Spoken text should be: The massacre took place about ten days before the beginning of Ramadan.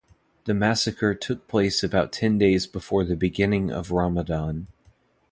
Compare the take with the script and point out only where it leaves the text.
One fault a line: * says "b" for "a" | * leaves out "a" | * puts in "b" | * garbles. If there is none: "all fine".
all fine